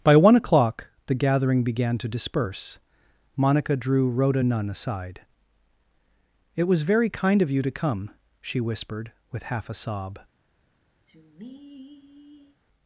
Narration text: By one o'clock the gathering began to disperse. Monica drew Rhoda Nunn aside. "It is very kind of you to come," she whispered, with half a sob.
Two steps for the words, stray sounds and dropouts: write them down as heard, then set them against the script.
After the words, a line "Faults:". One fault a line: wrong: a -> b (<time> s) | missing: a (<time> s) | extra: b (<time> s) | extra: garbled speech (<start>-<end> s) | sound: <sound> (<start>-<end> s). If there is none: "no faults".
By one o'clock the gathering began to disperse. Monica drew Rhoda Nunn aside. "It was very kind of you to come," she whispered, with half a sob.
Faults:
wrong: is -> was (6.7 s)
sound: sigh (11.0-12.6 s)